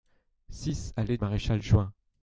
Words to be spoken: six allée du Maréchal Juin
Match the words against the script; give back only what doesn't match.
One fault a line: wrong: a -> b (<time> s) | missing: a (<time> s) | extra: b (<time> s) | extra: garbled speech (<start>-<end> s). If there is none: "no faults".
missing: du (1.2 s)